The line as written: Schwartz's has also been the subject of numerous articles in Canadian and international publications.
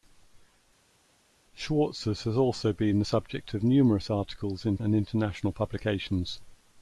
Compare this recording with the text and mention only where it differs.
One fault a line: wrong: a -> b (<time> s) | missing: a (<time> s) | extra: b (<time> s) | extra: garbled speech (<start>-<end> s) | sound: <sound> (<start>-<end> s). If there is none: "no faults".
missing: Canadian (4.8 s)